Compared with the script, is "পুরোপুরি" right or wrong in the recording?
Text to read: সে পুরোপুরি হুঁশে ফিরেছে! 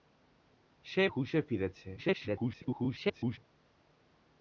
wrong